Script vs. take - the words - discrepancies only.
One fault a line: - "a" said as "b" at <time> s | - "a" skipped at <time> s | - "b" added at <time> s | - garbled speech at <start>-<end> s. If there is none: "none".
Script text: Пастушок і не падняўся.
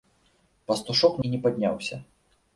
none